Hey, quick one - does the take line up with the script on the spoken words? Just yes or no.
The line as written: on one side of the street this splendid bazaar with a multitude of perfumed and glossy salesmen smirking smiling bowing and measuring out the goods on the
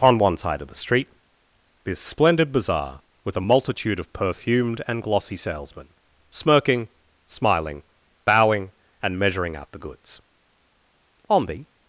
yes